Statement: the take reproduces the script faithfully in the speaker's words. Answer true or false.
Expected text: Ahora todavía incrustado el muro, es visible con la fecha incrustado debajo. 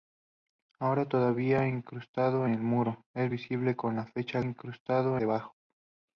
true